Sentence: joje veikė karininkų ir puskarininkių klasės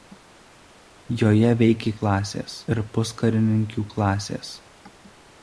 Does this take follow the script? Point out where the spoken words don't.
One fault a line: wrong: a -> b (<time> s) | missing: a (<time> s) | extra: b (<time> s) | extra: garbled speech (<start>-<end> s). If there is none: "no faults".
wrong: karininkų -> klasės (2.0 s)